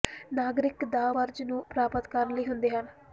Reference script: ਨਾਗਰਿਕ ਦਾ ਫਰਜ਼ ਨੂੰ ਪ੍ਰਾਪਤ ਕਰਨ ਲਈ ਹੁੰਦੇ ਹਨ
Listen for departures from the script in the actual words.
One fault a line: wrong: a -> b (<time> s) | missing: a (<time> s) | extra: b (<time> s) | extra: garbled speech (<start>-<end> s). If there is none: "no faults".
no faults